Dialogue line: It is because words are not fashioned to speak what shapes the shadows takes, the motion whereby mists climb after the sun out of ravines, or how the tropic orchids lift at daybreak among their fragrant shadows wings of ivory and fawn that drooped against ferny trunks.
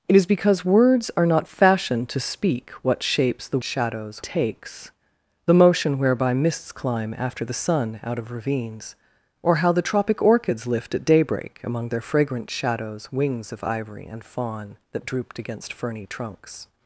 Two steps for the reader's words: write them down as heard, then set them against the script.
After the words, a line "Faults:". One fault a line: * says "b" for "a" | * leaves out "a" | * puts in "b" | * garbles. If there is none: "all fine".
It is because words are not fashioned to speak what shapes the shadows takes, the motion whereby mists climb after the sun out of ravines, or how the tropic orchids lift at daybreak among their fragrant shadows wings of ivory and fawn that drooped against ferny trunks.
Faults:
all fine